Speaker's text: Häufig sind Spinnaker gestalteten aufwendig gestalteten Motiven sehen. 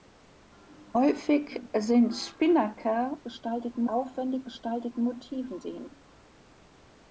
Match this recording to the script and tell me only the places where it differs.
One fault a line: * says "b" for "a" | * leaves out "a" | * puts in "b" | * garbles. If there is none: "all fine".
all fine